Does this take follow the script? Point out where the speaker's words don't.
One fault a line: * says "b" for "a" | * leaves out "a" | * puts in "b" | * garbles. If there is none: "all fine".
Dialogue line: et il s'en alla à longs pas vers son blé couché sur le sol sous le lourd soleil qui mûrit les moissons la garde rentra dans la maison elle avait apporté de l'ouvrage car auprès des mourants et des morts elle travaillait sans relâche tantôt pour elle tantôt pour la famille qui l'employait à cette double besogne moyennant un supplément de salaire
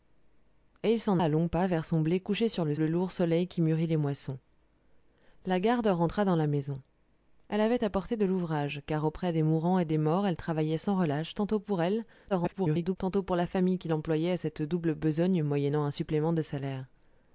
* leaves out "alla"
* leaves out "sol sous"
* garbles